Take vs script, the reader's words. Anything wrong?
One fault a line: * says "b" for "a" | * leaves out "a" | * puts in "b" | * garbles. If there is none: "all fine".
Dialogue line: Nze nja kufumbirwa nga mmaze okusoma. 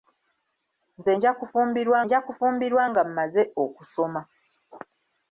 * puts in "nja kufumbirwa"